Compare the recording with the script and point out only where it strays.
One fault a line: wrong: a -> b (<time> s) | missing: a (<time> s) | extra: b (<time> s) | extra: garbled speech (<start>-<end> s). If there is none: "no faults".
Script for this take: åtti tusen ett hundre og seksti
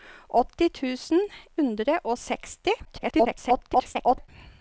missing: ett (1.2 s)
extra: garbled speech (2.8-4.3 s)